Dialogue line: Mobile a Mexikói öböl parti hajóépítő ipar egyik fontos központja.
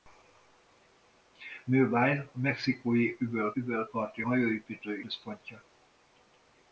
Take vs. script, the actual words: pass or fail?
fail